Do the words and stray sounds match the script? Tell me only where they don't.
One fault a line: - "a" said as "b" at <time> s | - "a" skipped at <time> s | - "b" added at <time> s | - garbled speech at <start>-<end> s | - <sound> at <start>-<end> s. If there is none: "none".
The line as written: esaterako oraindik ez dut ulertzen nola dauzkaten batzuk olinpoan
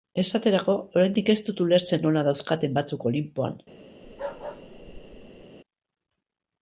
- bark at 4.0-5.5 s